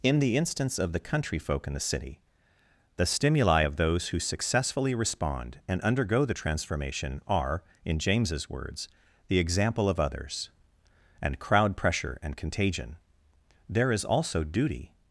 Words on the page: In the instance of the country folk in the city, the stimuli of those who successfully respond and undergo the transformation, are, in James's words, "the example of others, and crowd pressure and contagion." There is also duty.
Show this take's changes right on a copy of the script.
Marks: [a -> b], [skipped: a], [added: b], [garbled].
In the instance of the country folk in the city, the stimuli of those who successfully respond and undergo the transformation, are, in James's words, "the example of others, and crowd pressure and contagion." There is also duty.